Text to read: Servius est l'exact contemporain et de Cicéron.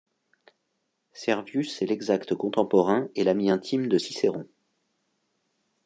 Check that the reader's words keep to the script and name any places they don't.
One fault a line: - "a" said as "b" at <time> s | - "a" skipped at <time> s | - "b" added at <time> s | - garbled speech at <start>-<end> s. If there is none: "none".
- "l'ami intime" added at 3.2 s